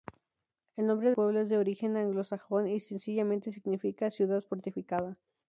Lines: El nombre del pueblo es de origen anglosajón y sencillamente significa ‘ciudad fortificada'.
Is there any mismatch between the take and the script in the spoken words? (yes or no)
yes